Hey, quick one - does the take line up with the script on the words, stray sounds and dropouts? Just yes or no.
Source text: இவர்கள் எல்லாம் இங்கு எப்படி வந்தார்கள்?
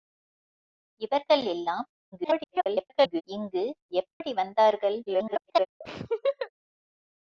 no